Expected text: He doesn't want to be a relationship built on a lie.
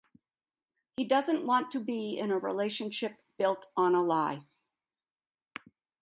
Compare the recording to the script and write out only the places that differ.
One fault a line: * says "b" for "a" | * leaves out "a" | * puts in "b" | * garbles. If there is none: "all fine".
* puts in "in"